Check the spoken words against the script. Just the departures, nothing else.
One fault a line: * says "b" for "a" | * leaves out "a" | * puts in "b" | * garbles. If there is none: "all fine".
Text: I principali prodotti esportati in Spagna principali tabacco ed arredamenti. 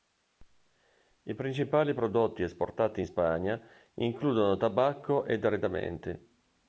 * says "includono" for "principali"